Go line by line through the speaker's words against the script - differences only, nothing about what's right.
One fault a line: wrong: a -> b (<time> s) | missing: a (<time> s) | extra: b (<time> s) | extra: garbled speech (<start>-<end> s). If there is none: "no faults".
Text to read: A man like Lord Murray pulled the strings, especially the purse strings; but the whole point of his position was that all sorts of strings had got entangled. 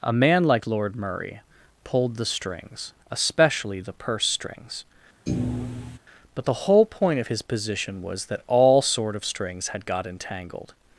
wrong: sorts -> sort (8.8 s)